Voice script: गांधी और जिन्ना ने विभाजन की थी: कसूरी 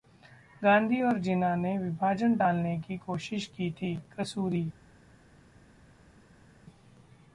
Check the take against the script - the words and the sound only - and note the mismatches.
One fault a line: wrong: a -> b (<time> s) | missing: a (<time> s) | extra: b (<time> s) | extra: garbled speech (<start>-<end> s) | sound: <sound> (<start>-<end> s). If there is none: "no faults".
extra: टालने की कोशिश (2.3 s)